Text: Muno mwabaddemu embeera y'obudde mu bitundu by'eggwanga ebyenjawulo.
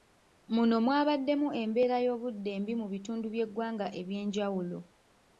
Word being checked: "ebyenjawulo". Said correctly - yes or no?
yes